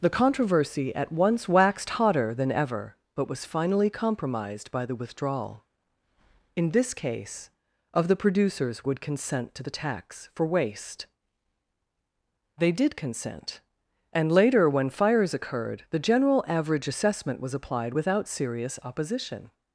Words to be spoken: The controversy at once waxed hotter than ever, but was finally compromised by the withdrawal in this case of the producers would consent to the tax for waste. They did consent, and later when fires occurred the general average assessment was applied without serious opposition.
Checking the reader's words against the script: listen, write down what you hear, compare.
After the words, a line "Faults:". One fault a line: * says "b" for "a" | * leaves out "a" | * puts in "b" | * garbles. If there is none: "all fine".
The controversy at once waxed hotter than ever, but was finally compromised by the withdrawal in this case of the producers would consent to the tax for waste. They did consent, and later when fires occurred the general average assessment was applied without serious opposition.
Faults:
all fine